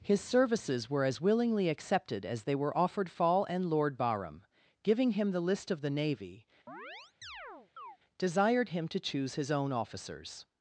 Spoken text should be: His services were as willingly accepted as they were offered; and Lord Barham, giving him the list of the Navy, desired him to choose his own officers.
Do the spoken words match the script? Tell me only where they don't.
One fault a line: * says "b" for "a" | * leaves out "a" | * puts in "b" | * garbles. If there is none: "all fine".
* puts in "fall"